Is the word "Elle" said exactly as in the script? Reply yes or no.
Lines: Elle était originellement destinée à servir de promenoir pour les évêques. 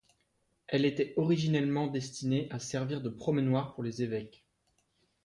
yes